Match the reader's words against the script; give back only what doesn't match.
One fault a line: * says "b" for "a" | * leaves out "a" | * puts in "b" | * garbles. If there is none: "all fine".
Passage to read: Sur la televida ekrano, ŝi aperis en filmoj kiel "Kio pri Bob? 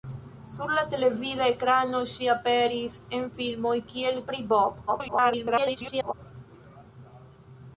* leaves out "Kio"
* garbles